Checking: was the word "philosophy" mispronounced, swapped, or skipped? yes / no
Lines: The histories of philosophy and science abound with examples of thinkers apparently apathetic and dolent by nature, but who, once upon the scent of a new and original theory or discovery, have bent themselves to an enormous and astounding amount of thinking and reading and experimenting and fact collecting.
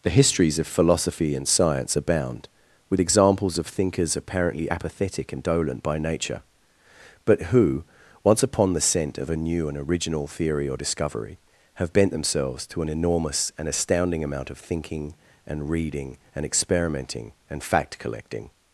no